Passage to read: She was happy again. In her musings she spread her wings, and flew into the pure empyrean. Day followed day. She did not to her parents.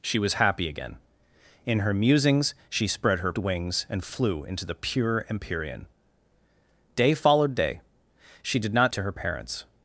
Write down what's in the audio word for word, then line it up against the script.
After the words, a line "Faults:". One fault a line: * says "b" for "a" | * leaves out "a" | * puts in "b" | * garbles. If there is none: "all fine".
She was happy again. In her musings she spread her wings, and flew into the pure empyrean. Day followed day. She did not to her parents.
Faults:
all fine